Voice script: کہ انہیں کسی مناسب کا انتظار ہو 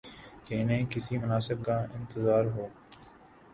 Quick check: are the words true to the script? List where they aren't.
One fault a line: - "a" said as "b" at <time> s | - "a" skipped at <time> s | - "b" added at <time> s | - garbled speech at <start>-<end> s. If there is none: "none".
none